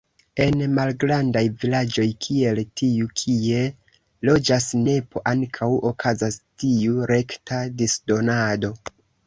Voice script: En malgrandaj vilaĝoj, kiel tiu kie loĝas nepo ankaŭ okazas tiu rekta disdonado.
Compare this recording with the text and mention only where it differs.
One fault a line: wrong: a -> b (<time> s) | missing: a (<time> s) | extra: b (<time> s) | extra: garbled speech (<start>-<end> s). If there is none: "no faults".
no faults